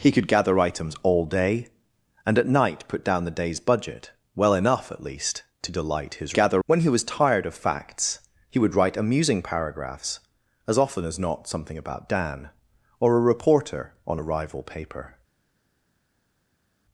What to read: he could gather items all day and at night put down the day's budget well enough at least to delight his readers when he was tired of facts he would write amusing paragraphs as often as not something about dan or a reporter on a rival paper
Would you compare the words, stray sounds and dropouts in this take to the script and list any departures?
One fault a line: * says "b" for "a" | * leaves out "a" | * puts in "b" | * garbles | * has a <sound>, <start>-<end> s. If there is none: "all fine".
* says "gather" for "readers"